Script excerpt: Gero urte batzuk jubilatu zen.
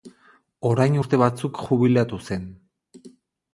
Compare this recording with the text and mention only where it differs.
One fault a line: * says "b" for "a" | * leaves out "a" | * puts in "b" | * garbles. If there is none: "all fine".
* says "Orain" for "Gero"